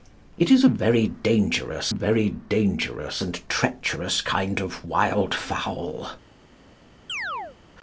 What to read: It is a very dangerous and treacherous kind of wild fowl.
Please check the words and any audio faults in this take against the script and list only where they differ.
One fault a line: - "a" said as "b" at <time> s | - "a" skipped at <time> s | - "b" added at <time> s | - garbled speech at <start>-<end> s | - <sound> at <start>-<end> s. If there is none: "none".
- "very dangerous" added at 1.9 s
- chirp at 7.1-7.6 s